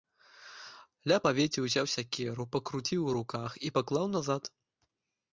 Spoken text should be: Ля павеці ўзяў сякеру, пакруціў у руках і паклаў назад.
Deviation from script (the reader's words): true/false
false